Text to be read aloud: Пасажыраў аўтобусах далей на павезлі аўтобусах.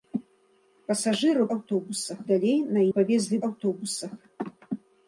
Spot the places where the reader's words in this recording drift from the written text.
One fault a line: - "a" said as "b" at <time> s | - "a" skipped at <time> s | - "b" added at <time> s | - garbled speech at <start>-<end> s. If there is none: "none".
none